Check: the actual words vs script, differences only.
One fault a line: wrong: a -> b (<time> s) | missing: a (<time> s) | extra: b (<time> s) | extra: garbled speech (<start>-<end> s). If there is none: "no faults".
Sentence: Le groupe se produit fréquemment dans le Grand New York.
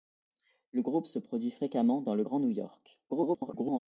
extra: garbled speech (3.1-3.8 s)